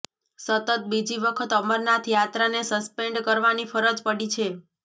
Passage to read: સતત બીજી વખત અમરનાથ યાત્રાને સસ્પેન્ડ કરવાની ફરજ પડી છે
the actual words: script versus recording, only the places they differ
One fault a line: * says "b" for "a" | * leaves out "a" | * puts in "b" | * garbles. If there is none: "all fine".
all fine